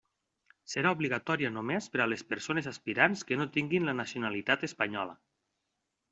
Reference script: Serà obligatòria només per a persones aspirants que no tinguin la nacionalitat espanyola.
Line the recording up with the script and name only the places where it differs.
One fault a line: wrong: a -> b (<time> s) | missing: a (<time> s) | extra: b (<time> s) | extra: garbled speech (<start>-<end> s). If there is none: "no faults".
extra: les (2.1 s)